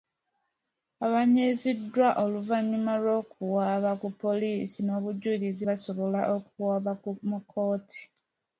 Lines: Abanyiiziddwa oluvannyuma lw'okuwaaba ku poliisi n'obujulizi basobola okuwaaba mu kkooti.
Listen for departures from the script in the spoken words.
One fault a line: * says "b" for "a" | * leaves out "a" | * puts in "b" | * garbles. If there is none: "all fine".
all fine